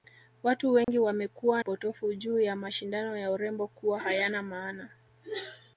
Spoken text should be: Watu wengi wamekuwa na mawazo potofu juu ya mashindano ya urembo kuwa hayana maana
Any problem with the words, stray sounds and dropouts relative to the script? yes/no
yes